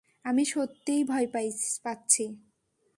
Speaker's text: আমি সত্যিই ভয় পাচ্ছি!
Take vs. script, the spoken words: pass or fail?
pass